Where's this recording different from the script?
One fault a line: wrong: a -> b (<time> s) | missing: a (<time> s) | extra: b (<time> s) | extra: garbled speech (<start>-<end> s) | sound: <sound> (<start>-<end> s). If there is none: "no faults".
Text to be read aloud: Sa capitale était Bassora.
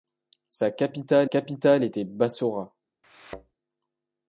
extra: capitale (1.2 s)
sound: thud (3.0-3.5 s)